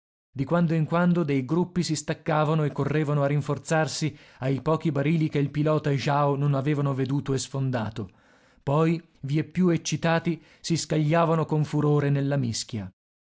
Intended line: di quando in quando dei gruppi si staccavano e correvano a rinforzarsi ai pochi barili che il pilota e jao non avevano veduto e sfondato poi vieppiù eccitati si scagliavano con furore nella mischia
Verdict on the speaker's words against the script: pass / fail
pass